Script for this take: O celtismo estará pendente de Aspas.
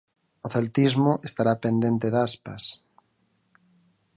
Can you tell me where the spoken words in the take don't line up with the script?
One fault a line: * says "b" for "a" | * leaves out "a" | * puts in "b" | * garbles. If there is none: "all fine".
all fine